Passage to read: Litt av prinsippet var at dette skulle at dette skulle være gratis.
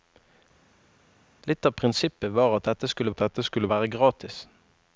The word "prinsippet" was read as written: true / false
true